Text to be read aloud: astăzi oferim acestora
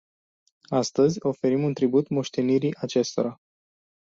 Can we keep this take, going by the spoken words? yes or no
no